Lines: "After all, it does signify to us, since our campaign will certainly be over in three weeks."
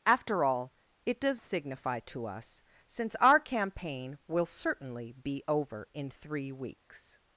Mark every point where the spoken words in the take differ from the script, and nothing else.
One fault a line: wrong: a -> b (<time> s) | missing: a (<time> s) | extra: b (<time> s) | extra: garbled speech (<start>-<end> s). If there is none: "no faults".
no faults